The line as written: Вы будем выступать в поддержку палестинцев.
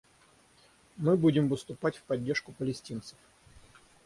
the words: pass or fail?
fail